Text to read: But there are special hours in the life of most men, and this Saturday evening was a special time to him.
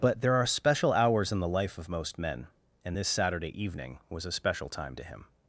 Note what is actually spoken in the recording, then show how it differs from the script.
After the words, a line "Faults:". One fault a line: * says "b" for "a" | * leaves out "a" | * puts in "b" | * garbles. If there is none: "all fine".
But there are special hours in the life of most men, and this Saturday evening was a special time to him.
Faults:
all fine